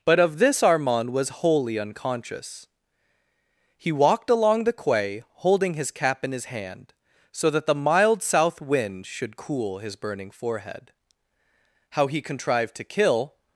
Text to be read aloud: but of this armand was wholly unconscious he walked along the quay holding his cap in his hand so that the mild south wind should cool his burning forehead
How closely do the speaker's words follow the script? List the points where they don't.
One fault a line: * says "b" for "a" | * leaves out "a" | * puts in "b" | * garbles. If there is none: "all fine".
* puts in "how he contrived to kill"